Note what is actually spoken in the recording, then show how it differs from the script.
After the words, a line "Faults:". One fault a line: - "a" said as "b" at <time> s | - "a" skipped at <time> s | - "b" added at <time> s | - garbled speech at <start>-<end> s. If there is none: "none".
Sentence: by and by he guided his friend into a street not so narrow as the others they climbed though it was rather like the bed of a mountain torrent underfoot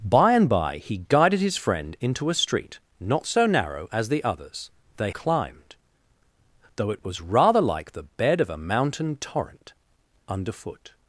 by and by he guided his friend into a street not so narrow as the others they climbed though it was rather like the bed of a mountain torrent underfoot
Faults:
none